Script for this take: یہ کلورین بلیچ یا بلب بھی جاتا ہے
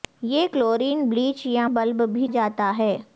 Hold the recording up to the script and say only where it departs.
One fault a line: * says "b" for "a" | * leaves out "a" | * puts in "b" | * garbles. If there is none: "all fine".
all fine